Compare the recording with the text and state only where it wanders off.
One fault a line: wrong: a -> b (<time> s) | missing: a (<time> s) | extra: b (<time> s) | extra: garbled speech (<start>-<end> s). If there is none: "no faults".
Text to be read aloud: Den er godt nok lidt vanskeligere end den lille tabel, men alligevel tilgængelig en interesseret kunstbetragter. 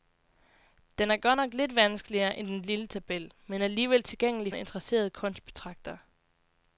no faults